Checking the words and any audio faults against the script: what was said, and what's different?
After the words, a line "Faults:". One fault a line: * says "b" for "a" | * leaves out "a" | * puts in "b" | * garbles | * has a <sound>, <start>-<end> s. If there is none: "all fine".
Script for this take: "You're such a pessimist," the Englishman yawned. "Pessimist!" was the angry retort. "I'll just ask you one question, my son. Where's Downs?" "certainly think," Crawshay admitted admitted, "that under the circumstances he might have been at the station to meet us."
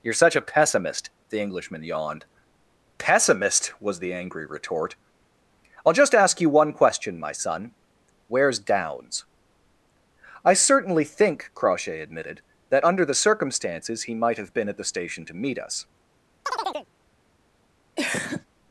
"You're such a pessimist," the Englishman yawned. "Pessimist!" was the angry retort. "I'll just ask you one question, my son. Where's Downs?" "I certainly think," Crawshay admitted, "that under the circumstances he might have been at the station to meet us."
Faults:
* puts in "I"
* leaves out "admitted"
* has a chirp, 16.4-16.9 s
* has a cough, 18.0-18.5 s